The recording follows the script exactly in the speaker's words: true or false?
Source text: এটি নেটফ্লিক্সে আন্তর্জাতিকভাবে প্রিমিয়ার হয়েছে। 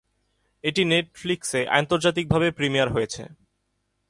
true